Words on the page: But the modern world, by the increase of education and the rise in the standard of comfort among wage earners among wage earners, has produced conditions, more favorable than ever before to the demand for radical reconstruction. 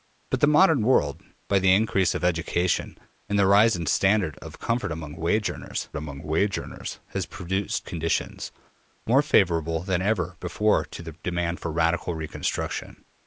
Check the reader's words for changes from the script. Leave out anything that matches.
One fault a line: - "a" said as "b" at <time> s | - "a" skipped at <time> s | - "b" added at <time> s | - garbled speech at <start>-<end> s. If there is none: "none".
none